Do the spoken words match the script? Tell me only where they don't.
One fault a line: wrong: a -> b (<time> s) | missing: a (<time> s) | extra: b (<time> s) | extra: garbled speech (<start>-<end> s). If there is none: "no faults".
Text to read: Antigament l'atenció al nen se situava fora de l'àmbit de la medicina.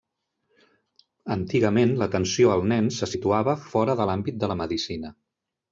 no faults